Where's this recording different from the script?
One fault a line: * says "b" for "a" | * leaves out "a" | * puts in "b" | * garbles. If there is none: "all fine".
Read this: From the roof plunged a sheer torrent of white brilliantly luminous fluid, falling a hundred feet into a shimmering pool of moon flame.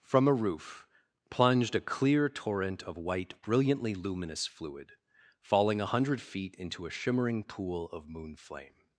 * says "a" for "the"
* says "clear" for "sheer"